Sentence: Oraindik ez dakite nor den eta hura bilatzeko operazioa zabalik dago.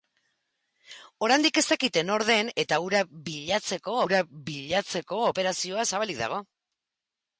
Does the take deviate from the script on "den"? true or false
false